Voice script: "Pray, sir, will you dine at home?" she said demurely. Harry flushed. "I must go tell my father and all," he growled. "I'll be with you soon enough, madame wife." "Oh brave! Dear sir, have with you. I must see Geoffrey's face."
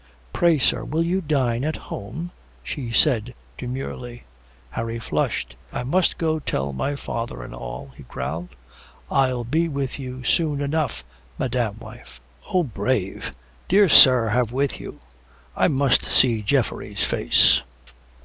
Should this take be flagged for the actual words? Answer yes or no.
no